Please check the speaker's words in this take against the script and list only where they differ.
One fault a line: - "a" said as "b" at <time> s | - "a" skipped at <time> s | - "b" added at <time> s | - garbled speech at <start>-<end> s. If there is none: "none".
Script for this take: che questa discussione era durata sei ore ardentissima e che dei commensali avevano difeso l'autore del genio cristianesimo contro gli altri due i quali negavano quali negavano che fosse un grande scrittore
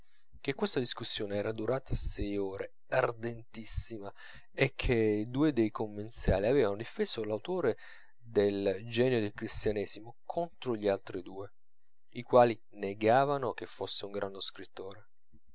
- "due" added at 5.3 s
- "del" added at 9.2 s
- "quali negavano" skipped at 13.5 s